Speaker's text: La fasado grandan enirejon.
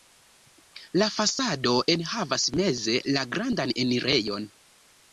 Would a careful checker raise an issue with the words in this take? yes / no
yes